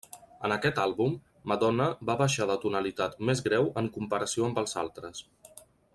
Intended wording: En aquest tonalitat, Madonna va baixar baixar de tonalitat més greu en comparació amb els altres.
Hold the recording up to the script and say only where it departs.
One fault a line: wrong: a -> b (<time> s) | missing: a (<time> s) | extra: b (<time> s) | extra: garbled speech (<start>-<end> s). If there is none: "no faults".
wrong: tonalitat -> àlbum (0.8 s)
missing: baixar (2.5 s)